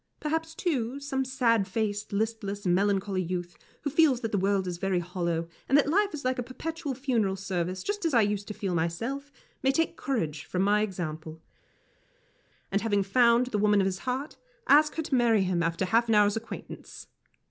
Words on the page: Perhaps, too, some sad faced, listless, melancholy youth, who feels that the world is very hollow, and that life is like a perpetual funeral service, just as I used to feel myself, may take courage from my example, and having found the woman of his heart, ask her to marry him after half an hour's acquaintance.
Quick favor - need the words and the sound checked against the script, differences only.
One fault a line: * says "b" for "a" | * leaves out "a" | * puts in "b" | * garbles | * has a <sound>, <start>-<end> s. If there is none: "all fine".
all fine